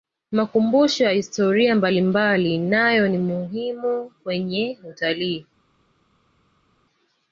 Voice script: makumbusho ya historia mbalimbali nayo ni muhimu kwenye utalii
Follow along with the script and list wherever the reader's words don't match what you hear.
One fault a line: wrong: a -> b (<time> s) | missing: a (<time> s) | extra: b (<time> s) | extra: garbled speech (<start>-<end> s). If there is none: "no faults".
no faults